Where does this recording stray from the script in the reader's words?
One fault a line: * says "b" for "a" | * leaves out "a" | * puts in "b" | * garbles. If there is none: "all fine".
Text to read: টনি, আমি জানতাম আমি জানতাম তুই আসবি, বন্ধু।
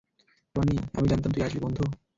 * leaves out "আমি জানতাম"